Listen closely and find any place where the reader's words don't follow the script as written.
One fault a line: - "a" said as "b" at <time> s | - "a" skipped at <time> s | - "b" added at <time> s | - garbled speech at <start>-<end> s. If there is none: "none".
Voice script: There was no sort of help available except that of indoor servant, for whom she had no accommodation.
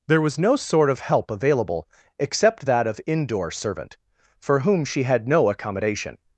none